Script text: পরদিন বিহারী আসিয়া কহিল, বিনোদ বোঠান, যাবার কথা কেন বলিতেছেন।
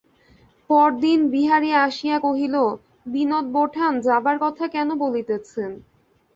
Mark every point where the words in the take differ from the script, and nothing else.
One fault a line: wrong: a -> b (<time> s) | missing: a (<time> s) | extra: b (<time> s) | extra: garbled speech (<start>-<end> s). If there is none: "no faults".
no faults